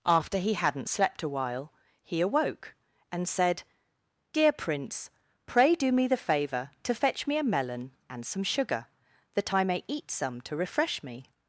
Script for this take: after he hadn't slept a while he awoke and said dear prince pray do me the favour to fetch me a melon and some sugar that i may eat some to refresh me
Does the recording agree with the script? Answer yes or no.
yes